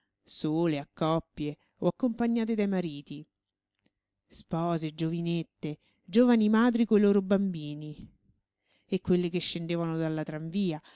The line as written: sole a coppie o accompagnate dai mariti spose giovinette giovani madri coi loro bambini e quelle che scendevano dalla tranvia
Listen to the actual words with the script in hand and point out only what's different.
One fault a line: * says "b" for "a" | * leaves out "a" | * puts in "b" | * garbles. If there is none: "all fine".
all fine